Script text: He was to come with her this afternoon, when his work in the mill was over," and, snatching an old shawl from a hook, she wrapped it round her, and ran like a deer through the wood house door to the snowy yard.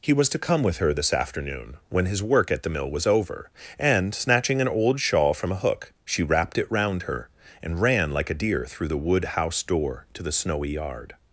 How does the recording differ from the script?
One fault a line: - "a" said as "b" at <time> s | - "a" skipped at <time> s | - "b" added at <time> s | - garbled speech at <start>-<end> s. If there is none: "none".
- "in" said as "at" at 2.5 s